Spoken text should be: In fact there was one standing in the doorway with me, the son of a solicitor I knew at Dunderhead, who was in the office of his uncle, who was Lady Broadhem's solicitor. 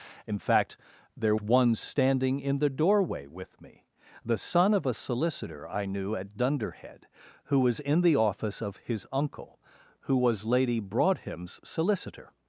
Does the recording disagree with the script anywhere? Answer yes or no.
yes